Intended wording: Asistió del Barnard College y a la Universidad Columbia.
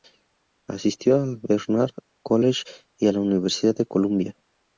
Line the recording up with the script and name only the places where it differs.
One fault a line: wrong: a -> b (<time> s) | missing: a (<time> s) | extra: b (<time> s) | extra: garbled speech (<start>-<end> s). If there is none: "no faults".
wrong: del -> al (1.2 s)
extra: de (3.8 s)